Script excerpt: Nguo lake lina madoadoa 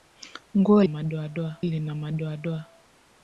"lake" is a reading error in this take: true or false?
true